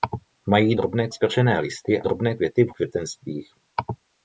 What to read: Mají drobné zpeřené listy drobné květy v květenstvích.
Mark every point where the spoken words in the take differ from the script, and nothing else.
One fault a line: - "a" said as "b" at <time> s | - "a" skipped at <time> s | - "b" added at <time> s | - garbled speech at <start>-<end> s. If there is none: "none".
none